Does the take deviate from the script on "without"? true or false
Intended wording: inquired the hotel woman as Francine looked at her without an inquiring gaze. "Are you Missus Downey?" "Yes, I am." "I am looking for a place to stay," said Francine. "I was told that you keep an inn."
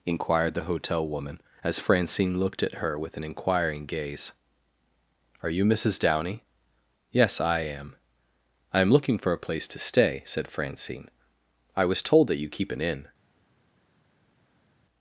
true